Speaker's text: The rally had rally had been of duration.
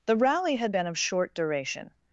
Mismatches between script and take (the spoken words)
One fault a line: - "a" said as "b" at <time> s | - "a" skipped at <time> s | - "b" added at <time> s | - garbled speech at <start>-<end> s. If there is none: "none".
- "rally had" skipped at 0.7 s
- "short" added at 1.0 s